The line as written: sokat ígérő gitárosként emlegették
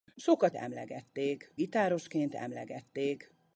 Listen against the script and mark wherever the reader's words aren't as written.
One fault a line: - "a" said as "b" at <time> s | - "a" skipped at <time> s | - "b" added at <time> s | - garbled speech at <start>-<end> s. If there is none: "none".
- "ígérő" said as "emlegették" at 0.6 s